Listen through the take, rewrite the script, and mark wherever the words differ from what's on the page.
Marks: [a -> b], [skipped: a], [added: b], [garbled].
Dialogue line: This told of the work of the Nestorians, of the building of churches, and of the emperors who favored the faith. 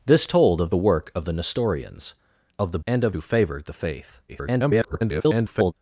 This told of the work of the Nestorians, of the [skipped: building of churches,] and of [skipped: the emperors] who favored the faith. [garbled]